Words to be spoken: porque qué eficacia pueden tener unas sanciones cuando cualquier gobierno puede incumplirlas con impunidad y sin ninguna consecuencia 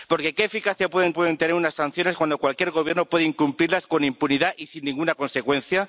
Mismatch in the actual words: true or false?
true